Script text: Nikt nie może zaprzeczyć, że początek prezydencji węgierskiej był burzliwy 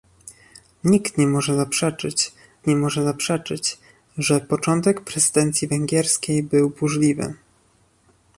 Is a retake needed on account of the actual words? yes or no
yes